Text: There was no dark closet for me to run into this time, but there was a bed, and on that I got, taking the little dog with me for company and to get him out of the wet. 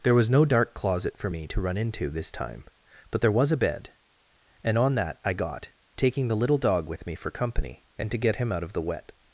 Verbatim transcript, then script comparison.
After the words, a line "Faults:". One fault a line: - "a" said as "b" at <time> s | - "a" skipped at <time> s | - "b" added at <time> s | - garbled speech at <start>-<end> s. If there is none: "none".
There was no dark closet for me to run into this time, but there was a bed, and on that I got, taking the little dog with me for company and to get him out of the wet.
Faults:
none